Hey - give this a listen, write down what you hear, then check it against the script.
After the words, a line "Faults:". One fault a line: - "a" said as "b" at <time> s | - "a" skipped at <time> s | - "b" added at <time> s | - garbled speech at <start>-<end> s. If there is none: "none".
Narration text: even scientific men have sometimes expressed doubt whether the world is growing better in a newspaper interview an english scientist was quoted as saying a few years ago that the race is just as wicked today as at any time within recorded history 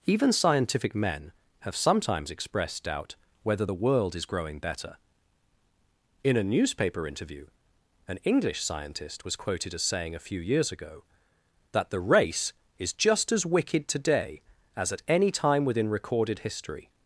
even scientific men have sometimes expressed doubt whether the world is growing better in a newspaper interview an english scientist was quoted as saying a few years ago that the race is just as wicked today as at any time within recorded history
Faults:
none